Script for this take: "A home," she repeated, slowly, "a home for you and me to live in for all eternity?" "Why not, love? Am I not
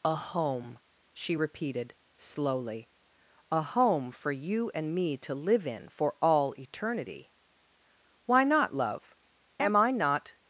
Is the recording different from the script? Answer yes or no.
no